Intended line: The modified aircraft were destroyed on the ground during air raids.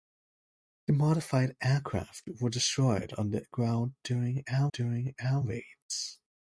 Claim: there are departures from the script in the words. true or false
true